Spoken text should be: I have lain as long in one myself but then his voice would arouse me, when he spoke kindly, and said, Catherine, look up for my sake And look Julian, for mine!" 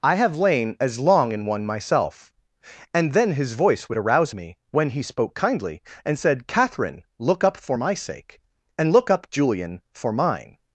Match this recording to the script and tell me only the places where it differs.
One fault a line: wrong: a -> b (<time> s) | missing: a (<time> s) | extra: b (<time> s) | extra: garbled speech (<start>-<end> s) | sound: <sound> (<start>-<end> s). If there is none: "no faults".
wrong: but -> and (2.9 s)
extra: up (9.1 s)